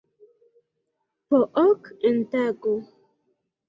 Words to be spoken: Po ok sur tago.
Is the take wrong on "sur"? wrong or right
wrong